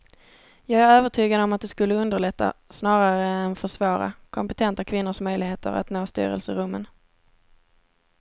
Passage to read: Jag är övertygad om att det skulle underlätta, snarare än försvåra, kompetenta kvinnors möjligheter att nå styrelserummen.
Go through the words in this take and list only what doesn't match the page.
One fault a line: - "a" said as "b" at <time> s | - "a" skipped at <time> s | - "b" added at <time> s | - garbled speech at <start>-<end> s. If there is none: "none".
none